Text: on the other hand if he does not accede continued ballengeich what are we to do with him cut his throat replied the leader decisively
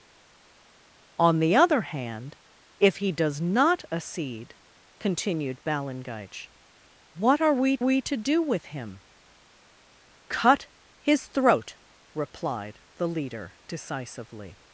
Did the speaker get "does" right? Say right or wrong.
right